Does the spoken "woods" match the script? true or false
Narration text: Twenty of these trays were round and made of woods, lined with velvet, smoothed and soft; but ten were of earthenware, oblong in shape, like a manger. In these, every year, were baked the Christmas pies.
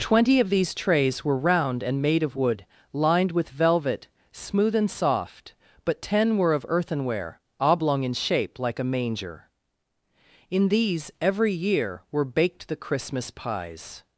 false